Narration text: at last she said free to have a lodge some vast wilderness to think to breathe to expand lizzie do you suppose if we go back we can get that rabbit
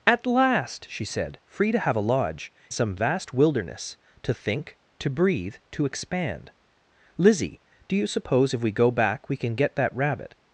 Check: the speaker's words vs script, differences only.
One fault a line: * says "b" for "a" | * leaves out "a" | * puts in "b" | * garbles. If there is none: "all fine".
all fine